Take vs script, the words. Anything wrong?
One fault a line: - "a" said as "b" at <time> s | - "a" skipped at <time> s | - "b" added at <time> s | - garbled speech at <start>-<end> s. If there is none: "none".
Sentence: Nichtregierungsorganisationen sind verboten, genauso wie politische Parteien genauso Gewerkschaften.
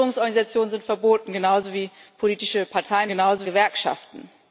none